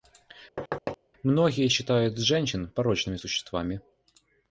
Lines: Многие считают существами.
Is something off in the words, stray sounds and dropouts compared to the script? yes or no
yes